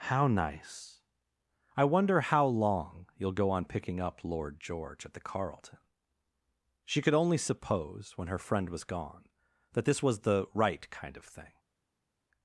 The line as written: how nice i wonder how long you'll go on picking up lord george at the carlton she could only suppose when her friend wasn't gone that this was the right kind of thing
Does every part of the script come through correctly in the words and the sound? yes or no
no